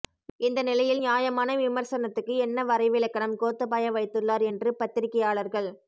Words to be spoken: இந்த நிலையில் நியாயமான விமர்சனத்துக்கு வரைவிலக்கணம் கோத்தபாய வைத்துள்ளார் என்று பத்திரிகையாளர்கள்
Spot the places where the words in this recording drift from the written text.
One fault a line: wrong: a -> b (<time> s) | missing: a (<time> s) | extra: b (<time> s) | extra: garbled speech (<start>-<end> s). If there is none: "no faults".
extra: என்ன (2.5 s)